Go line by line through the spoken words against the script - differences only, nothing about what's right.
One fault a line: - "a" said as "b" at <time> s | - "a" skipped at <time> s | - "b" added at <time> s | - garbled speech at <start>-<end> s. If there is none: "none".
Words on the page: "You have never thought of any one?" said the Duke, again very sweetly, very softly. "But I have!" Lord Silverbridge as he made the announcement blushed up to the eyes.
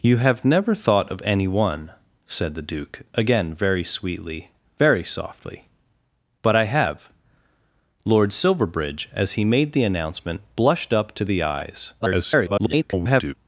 - garbled speech at 12.0-13.3 s